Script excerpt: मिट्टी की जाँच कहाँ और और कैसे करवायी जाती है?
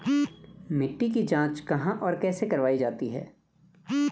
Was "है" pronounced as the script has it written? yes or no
yes